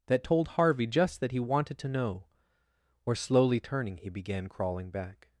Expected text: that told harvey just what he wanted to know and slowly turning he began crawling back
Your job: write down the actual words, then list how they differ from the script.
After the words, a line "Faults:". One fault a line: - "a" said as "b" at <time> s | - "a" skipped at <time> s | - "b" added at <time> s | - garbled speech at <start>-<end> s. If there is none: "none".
that told harvey just that he wanted to know or slowly turning he began crawling back
Faults:
- "what" said as "that" at 1.2 s
- "and" said as "or" at 3.0 s